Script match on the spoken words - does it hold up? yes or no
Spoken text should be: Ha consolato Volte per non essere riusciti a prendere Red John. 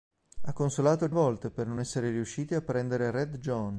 yes